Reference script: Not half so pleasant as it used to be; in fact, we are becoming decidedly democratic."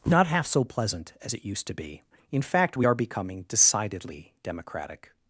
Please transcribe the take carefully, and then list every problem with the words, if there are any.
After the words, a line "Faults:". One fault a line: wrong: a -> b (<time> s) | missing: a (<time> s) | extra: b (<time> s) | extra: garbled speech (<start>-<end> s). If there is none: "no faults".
Not half so pleasant as it used to be; in fact, we are becoming decidedly democratic."
Faults:
no faults